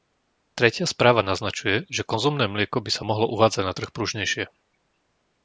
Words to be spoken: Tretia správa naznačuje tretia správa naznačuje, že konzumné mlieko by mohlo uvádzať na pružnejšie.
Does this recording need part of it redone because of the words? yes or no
yes